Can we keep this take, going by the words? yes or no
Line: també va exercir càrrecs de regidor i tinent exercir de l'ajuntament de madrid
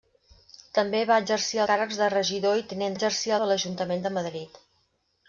yes